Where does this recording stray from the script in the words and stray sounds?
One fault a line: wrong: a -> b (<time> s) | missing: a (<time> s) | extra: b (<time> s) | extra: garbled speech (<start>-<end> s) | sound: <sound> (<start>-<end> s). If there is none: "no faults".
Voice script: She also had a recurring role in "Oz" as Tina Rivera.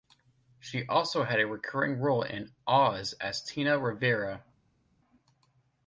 no faults